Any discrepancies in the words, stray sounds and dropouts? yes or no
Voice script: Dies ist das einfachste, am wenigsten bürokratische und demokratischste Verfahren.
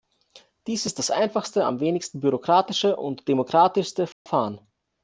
yes